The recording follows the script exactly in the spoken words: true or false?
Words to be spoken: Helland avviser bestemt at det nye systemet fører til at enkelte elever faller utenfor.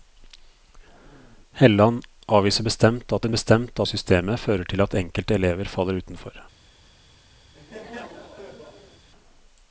false